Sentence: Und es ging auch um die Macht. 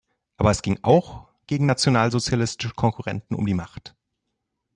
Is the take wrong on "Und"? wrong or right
wrong